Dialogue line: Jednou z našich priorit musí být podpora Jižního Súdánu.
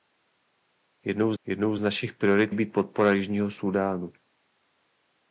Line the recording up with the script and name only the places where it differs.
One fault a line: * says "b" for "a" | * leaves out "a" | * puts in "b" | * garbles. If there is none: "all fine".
* puts in "jednou"
* leaves out "musí"